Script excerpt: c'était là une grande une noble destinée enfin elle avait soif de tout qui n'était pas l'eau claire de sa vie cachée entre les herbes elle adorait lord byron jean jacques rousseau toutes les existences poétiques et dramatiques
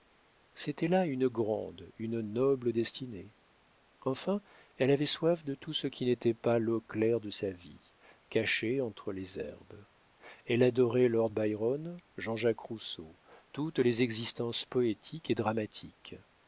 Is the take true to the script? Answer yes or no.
no